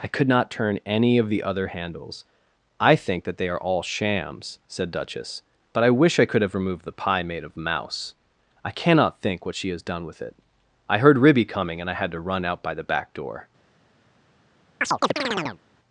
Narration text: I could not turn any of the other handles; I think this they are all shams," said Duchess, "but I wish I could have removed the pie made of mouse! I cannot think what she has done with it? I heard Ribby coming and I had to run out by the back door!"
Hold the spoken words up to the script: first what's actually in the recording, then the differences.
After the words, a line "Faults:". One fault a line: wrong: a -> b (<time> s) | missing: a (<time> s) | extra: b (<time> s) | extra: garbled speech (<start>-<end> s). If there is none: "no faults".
I could not turn any of the other handles; I think that they are all shams," said Duchess, "but I wish I could have removed the pie made of mouse! I cannot think what she has done with it? I heard Ribby coming and I had to run out by the back door!"
Faults:
wrong: this -> that (3.2 s)